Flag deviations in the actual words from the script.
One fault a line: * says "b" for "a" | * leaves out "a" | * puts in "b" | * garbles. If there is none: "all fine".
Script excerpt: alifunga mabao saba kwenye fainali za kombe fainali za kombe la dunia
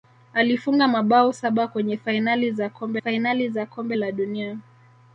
all fine